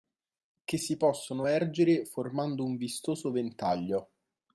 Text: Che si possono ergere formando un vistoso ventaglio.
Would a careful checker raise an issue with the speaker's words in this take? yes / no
no